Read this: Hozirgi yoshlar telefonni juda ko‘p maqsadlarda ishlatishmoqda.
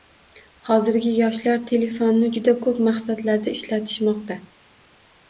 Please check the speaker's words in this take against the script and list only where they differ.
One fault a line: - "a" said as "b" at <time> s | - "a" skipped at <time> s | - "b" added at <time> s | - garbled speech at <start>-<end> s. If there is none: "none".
none